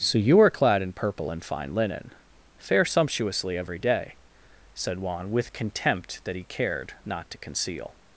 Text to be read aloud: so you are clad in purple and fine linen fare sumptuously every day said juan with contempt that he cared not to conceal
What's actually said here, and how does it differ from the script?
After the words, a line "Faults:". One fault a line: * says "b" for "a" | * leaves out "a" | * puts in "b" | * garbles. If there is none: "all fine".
so you are clad in purple and fine linen fare sumptuously every day said juan with contempt that he cared not to conceal
Faults:
all fine